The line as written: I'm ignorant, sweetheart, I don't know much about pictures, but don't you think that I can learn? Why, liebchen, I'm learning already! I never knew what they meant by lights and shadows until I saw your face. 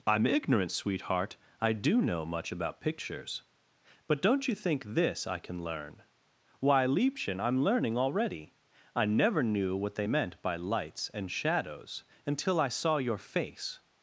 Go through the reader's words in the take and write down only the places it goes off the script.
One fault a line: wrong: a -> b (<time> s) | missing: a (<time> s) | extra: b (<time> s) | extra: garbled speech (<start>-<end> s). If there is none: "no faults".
wrong: don't -> do (1.7 s)
wrong: that -> this (4.8 s)